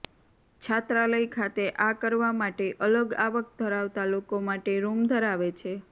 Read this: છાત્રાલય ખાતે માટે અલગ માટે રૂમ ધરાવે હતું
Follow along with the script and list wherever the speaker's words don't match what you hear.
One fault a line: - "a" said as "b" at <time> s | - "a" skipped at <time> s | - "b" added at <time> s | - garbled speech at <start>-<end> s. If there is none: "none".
- "આ કરવા" added at 1.8 s
- "આવક ધરાવતા લોકો" added at 3.2 s
- "હતું" said as "છે" at 5.6 s